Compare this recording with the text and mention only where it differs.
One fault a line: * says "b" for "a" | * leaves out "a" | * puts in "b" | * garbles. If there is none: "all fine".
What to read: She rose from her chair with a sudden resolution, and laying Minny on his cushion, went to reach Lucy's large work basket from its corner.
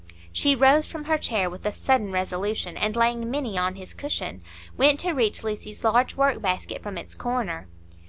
all fine